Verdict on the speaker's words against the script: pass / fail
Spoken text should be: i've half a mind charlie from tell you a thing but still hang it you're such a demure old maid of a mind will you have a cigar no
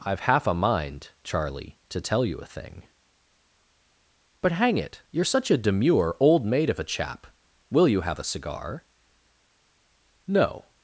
fail